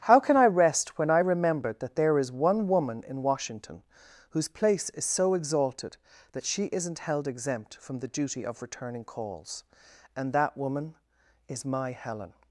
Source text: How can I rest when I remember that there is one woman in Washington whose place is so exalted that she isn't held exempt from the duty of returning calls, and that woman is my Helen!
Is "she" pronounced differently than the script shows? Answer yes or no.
no